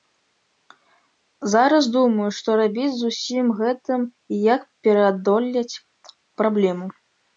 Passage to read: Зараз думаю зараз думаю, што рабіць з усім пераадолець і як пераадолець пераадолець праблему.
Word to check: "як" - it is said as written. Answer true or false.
true